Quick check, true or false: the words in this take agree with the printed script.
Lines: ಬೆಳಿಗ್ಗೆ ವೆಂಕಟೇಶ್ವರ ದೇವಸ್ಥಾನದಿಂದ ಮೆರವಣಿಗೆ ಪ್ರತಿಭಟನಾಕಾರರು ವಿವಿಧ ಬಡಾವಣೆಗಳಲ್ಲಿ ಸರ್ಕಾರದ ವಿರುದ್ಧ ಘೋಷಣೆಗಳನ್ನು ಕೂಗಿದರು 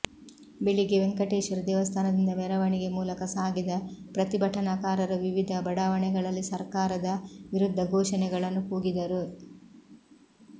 false